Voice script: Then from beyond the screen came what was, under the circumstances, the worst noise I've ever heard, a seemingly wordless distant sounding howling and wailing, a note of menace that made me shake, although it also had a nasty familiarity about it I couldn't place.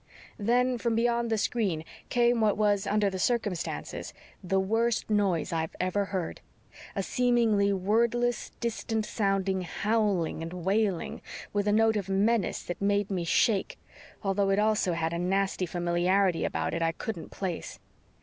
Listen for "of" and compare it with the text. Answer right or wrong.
right